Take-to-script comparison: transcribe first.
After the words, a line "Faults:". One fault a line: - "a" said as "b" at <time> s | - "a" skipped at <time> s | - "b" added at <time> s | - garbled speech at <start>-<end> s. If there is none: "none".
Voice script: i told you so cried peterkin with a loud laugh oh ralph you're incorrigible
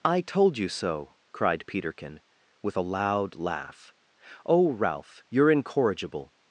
i told you so cried peterkin with a loud laugh oh ralph you're incorrigible
Faults:
none